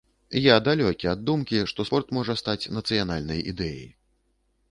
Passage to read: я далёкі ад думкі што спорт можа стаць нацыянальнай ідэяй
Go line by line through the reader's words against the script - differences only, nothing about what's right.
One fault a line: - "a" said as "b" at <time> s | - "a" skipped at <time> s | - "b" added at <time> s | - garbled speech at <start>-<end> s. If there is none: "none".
none